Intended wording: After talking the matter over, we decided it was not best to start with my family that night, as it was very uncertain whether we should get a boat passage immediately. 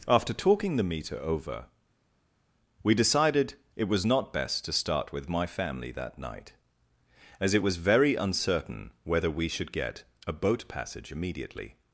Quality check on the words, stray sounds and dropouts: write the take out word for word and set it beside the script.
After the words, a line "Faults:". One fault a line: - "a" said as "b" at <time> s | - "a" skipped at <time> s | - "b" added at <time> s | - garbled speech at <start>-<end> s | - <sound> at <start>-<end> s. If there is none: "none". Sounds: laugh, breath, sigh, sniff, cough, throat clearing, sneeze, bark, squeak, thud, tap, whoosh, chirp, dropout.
After talking the meter over, we decided it was not best to start with my family that night, as it was very uncertain whether we should get a boat passage immediately.
Faults:
- "matter" said as "meter" at 0.8 s